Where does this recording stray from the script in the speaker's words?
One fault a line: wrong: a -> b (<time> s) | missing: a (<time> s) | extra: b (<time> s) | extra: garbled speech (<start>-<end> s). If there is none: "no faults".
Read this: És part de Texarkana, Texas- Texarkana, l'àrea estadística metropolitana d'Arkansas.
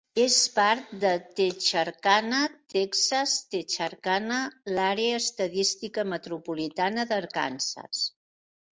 no faults